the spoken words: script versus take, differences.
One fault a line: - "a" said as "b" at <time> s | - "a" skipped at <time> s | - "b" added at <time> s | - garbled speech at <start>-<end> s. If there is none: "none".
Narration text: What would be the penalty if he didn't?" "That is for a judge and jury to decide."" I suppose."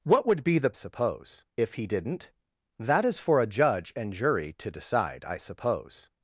- "penalty" said as "suppose" at 0.7 s